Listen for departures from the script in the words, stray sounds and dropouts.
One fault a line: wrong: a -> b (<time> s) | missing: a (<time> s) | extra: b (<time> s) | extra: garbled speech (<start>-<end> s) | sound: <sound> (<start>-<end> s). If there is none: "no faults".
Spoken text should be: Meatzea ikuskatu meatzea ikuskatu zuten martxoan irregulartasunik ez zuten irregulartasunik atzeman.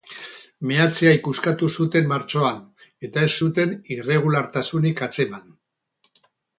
missing: meatzea ikuskatu (1.7 s)
wrong: irregulartasunik -> eta (3.1 s)